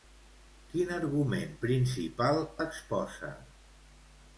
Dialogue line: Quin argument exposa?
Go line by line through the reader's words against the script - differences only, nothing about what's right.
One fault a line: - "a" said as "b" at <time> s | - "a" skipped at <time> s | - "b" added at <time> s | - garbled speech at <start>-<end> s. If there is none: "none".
- "principal" added at 1.7 s